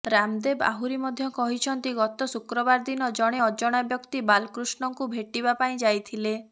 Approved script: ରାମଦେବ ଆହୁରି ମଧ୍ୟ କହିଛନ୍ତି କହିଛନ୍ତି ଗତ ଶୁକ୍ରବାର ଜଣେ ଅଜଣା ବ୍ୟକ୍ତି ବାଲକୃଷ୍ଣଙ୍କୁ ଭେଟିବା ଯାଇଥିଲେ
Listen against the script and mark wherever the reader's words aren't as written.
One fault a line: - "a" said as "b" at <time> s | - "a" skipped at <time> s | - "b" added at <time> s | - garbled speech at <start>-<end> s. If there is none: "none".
- "କହିଛନ୍ତି" skipped at 1.9 s
- "ଦିନ" added at 2.8 s
- "ପାଇଁ" added at 5.6 s